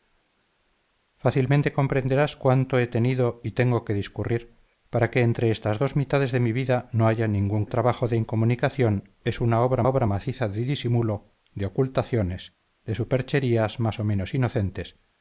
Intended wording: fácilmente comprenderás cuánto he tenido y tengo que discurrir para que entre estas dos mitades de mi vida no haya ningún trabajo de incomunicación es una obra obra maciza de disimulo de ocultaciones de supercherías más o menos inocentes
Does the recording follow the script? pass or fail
pass